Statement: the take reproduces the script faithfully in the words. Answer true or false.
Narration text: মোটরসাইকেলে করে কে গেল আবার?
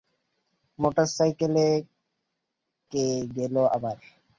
false